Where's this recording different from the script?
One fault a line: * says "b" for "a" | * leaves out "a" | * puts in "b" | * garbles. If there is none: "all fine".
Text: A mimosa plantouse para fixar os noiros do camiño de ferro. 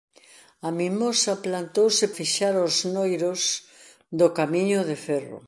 * leaves out "para"